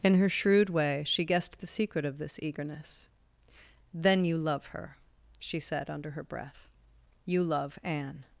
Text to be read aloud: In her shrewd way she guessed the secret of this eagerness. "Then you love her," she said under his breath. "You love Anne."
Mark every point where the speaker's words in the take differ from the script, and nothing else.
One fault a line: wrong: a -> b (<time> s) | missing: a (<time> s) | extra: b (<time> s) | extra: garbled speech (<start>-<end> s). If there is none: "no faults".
wrong: his -> her (6.1 s)